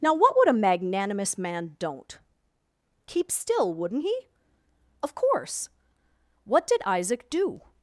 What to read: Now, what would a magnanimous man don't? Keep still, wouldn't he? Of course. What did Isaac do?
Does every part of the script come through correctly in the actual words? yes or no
yes